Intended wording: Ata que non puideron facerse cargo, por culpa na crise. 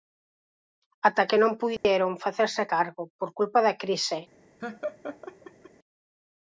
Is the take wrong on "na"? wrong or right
wrong